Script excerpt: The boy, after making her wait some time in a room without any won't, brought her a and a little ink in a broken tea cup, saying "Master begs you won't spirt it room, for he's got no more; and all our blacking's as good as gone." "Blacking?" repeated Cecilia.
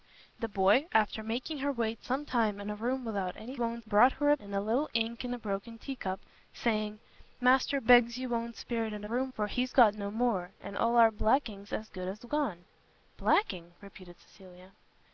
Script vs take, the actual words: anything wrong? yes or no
no